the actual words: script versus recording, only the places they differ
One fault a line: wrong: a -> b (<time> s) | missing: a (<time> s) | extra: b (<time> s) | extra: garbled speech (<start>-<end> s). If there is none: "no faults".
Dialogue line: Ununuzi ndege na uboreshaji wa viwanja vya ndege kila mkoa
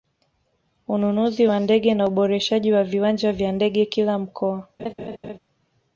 extra: wa (1.5 s)